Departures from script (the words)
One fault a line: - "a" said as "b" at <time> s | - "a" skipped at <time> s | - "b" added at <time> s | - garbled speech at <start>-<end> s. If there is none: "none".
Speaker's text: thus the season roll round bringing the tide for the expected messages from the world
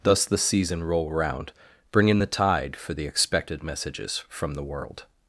none